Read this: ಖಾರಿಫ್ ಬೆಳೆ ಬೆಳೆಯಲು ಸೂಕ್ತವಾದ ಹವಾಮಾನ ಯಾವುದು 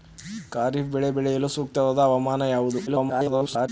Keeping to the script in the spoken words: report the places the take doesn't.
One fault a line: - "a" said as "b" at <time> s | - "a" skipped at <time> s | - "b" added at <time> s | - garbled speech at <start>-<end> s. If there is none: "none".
- garbled speech at 2.9-3.7 s